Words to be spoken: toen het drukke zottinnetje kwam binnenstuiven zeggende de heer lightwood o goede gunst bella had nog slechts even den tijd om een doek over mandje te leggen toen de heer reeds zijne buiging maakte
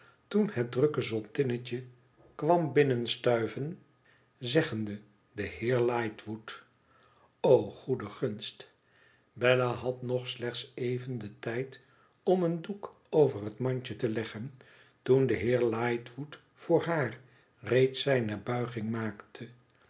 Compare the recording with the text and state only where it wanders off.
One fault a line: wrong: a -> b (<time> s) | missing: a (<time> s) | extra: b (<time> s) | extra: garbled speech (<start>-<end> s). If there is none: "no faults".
extra: het (13.4 s)
extra: lightwood voor haar (15.6 s)